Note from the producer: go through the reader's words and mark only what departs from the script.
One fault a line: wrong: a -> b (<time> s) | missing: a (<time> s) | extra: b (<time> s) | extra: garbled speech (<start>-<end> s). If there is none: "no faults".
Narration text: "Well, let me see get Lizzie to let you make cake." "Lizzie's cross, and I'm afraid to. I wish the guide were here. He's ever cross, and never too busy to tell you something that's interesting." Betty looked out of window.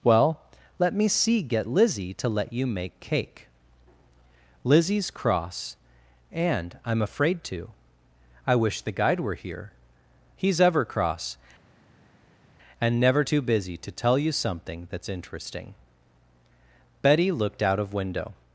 no faults